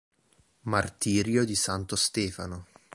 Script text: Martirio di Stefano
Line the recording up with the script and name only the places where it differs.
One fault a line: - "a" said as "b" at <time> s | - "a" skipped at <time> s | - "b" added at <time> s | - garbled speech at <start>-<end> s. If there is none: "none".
- "santo" added at 1.5 s